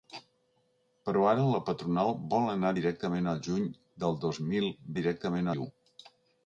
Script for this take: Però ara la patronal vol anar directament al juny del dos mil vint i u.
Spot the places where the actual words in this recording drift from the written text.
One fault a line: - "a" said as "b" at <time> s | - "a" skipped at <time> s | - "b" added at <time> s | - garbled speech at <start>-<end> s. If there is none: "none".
- "vint" said as "directament" at 5.0 s